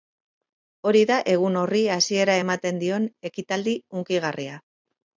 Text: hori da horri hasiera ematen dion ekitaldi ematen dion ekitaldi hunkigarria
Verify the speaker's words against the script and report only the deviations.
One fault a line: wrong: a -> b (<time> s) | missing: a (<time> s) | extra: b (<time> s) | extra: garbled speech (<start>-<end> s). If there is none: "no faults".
extra: egun (1.3 s)
missing: ematen dion ekitaldi (3.8 s)